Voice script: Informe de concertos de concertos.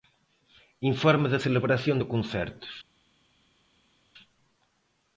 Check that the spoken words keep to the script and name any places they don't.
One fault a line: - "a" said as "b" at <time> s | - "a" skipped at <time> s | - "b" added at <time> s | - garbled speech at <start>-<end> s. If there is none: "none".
- "concertos" said as "celebración" at 1.4 s